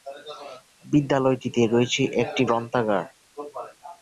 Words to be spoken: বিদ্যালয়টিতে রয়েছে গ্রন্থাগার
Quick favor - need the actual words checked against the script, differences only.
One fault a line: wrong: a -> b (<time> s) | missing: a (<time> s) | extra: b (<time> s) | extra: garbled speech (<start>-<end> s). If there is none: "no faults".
extra: একটি (2.2 s)